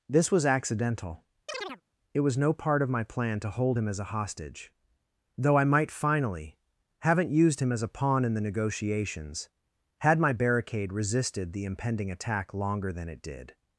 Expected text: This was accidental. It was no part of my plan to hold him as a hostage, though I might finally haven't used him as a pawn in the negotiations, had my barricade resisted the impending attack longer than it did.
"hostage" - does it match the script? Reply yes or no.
yes